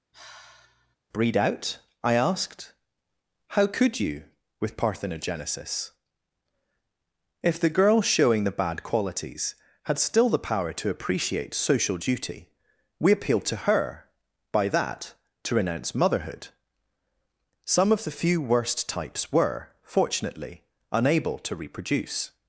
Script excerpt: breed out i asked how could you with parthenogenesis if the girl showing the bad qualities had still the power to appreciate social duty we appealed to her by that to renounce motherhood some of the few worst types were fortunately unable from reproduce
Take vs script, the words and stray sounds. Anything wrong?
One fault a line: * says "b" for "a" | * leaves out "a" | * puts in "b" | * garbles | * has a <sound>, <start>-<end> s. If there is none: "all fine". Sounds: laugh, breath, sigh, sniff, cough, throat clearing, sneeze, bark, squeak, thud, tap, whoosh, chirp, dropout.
* has a sigh, 0.1-1.0 s
* says "to" for "from"